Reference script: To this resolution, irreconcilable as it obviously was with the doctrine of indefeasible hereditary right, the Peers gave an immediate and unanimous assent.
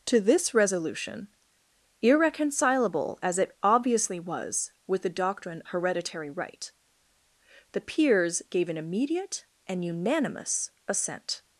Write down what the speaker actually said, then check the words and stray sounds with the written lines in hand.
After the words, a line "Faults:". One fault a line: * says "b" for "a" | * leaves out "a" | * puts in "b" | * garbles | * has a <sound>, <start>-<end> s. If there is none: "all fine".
To this resolution, irreconcilable as it obviously was with the doctrine hereditary right, the Peers gave an immediate and unanimous assent.
Faults:
* leaves out "of indefeasible"